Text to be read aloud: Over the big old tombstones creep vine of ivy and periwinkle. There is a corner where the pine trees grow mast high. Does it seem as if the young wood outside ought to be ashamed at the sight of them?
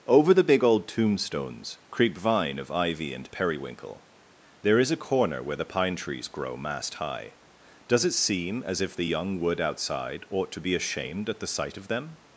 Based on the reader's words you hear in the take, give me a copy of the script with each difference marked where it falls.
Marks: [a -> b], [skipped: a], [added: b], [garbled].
Over the big old tombstones creep vine of ivy and periwinkle. There is a corner where the pine trees grow mast high. Does it seem as if the young wood outside ought to be ashamed at the sight of them?